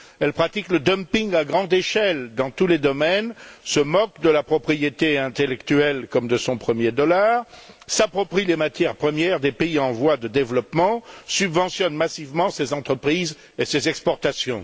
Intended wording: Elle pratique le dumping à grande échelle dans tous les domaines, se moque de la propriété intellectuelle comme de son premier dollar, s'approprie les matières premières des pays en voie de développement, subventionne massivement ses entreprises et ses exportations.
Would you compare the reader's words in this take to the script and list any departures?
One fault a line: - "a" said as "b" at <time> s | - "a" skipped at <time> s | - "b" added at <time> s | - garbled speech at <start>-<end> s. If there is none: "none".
none